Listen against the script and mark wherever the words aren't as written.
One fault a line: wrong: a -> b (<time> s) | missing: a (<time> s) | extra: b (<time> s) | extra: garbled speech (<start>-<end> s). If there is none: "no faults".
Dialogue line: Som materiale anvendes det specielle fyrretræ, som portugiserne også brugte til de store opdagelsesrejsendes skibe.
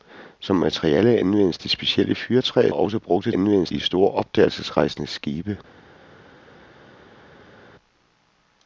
missing: som portugiserne (2.7 s)
wrong: til -> anvendes (3.3 s)